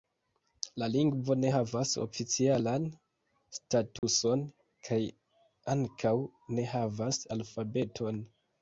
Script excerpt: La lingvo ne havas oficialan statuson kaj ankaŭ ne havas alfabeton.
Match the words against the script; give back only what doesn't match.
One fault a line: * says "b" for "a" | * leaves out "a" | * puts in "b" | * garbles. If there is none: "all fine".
all fine